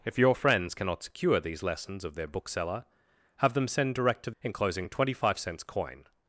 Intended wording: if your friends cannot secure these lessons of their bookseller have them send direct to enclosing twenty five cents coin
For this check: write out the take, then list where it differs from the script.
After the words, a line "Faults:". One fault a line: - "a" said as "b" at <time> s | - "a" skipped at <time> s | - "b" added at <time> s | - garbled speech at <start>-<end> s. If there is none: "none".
if your friends cannot secure these lessons of their bookseller have them send direct to enclosing twenty five cents coin
Faults:
none